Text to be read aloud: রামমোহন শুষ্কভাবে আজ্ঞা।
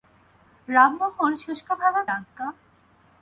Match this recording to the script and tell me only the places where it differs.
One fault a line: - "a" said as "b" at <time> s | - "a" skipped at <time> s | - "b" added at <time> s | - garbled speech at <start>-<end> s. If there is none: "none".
none